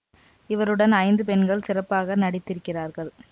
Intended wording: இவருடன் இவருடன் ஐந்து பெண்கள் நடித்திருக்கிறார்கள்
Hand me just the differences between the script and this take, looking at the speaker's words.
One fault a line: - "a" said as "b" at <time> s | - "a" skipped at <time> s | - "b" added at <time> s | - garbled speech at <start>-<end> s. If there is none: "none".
- "இவருடன்" skipped at 0.9 s
- "சிறப்பாக" added at 1.7 s